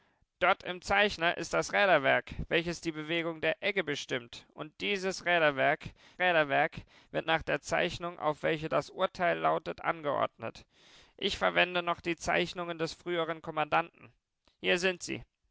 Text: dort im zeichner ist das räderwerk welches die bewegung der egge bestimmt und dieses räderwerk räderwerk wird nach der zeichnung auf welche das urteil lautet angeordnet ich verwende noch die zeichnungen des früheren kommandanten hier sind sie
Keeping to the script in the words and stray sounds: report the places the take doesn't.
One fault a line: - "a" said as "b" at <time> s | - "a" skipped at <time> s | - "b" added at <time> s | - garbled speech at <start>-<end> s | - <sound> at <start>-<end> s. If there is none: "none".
none